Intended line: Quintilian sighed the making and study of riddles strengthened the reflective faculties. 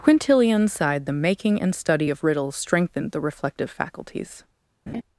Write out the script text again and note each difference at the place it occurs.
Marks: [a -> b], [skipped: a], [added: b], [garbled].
Quintilian sighed the making and study of riddles strengthened the reflective faculties.